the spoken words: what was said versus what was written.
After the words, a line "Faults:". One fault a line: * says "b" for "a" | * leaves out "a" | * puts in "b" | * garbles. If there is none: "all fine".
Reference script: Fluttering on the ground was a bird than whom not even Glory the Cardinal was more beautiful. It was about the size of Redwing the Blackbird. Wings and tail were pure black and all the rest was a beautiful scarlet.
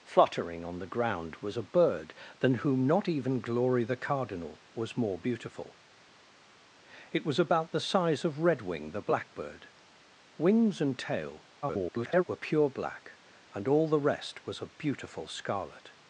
Fluttering on the ground was a bird than whom not even Glory the Cardinal was more beautiful. It was about the size of Redwing the Blackbird. Wings and tail [garbled] were pure black and all the rest was a beautiful scarlet.
Faults:
* garbles